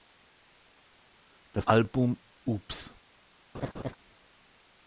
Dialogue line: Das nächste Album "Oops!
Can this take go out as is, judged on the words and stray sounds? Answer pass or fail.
fail